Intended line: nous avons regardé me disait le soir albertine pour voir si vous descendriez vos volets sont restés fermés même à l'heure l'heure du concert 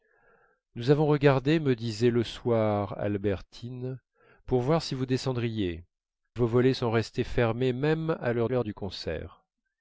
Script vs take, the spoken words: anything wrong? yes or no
no